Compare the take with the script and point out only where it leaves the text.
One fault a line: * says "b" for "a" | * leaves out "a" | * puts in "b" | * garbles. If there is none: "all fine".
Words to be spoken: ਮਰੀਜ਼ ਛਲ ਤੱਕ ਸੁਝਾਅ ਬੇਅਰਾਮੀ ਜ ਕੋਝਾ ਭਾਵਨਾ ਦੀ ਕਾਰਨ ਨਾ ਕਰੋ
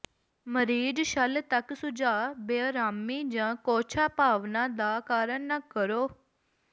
* says "ਦਾ" for "ਦੀ"